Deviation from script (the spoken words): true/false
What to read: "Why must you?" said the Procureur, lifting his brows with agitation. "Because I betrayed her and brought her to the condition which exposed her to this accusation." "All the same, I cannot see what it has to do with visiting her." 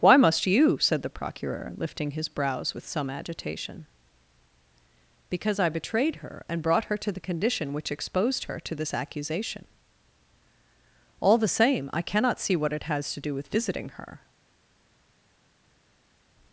true